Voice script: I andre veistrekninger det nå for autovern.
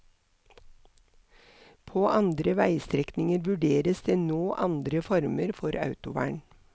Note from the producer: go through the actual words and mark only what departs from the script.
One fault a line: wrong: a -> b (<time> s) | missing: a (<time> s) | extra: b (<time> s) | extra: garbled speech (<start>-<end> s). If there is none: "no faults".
wrong: I -> På (1.9 s)
extra: vurderes (3.5 s)
extra: andre former (4.7 s)